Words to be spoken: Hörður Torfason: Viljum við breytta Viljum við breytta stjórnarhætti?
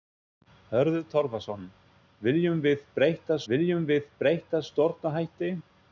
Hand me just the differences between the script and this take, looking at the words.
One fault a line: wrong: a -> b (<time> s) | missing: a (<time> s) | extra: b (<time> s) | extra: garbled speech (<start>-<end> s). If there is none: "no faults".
no faults